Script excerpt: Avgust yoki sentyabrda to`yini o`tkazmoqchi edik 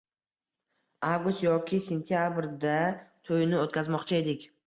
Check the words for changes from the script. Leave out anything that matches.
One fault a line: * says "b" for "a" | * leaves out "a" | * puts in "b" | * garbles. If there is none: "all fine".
all fine